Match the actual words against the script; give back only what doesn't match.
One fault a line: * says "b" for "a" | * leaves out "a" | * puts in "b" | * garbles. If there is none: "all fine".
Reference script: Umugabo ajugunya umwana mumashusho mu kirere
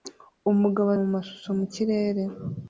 * leaves out "ajugunya umwana"